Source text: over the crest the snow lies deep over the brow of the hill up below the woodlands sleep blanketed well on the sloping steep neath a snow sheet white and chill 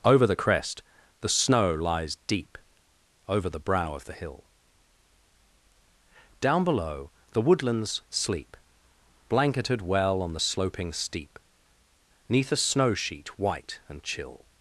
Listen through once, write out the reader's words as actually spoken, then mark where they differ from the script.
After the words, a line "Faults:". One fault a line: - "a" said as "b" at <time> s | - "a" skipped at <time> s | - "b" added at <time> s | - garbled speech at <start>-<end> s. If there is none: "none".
over the crest the snow lies deep over the brow of the hill down below the woodlands sleep blanketed well on the sloping steep neath a snow sheet white and chill
Faults:
- "up" said as "down" at 6.4 s